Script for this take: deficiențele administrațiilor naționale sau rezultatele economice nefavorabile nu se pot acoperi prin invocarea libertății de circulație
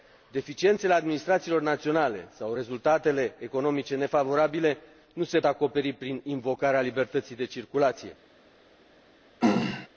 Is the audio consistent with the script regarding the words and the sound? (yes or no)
no